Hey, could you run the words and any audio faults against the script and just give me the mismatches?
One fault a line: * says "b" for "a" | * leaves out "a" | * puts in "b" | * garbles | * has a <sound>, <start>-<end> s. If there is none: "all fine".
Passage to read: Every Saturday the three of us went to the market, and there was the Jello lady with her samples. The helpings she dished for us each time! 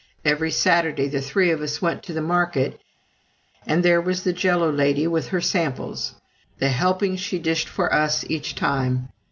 all fine